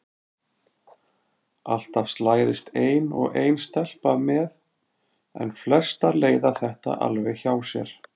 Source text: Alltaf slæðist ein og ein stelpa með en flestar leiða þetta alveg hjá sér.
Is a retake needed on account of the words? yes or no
no